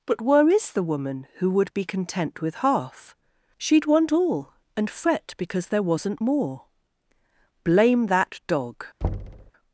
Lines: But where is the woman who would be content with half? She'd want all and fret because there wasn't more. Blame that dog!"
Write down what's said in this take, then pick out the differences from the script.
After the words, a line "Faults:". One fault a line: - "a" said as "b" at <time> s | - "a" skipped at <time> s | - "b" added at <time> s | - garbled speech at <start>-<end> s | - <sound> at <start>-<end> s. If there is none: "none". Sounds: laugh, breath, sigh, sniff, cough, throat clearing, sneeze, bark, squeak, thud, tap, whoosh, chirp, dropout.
But where is the woman who would be content with half? She'd want all and fret because there wasn't more. Blame that dog!"
Faults:
- thud at 9.0-9.5 s